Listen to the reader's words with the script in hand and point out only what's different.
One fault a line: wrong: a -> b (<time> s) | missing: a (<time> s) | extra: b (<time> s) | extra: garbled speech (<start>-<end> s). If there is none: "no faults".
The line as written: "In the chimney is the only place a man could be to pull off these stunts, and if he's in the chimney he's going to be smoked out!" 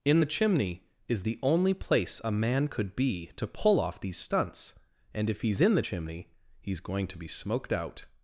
no faults